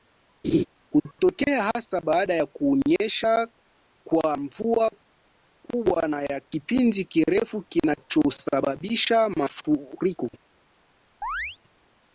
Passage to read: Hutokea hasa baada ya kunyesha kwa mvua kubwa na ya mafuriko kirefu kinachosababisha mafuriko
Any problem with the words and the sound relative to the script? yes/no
yes